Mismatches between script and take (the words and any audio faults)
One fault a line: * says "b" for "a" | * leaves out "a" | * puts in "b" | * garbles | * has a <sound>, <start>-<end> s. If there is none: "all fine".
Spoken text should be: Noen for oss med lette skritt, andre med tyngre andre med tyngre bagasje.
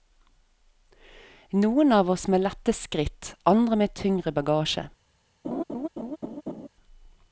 * says "av" for "for"
* leaves out "andre med tyngre"
* has a laugh, 5.4-6.7 s